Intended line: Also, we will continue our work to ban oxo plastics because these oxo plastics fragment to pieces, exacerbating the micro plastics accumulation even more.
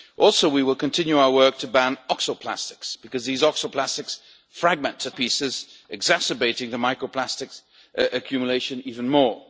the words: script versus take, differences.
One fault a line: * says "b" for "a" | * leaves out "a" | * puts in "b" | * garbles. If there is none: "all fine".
all fine